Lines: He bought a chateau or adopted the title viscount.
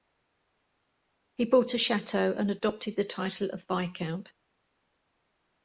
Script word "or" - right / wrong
wrong